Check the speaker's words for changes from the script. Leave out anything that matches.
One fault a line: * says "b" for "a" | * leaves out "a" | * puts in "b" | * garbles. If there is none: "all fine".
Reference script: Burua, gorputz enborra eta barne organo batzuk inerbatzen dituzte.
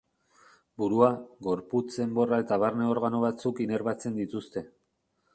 all fine